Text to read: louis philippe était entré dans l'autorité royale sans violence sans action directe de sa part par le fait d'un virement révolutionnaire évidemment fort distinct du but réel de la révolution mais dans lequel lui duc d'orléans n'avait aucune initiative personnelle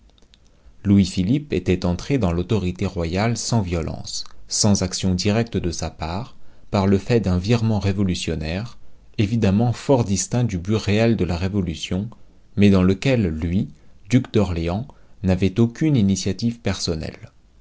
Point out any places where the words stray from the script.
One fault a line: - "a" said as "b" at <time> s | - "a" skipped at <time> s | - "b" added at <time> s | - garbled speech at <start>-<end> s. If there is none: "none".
none